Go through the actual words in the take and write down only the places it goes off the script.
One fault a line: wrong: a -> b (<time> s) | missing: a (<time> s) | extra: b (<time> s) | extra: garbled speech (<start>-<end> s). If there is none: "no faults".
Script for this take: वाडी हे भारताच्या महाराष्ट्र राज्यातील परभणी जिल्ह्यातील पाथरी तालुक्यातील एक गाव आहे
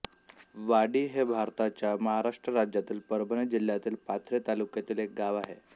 no faults